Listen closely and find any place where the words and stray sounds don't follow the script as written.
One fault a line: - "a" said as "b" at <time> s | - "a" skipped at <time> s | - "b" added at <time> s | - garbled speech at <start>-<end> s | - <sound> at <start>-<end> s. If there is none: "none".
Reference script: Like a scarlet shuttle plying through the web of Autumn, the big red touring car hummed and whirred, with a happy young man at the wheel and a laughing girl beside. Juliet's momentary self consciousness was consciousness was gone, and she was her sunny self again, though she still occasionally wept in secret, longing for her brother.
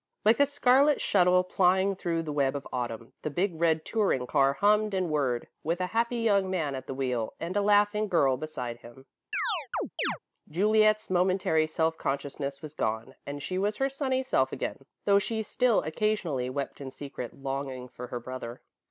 - "him" added at 8.8 s
- chirp at 9.3-10.2 s
- "consciousness was" skipped at 12.7 s